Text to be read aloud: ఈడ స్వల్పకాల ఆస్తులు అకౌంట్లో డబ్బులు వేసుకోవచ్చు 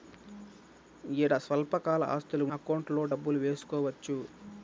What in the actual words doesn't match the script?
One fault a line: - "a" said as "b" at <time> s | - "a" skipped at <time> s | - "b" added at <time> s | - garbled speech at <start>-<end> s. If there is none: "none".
none